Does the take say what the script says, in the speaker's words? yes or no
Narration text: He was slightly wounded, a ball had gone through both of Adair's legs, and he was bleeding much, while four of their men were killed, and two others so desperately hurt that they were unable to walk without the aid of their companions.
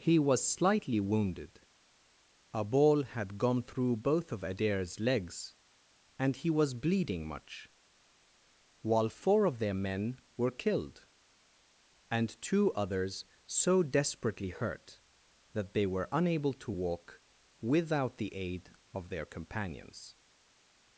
yes